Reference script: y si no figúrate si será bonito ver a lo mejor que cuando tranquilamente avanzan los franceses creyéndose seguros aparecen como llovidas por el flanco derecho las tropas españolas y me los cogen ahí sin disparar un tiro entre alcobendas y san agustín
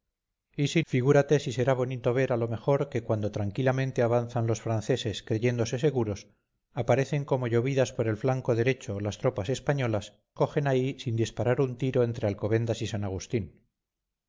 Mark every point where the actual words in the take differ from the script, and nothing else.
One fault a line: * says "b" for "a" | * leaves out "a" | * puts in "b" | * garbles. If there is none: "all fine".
* leaves out "no"
* leaves out "y me los"